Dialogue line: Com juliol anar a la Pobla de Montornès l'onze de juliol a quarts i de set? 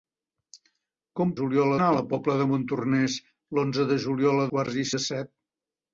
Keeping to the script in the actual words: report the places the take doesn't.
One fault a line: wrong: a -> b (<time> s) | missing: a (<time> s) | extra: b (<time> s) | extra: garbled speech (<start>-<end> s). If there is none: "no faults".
no faults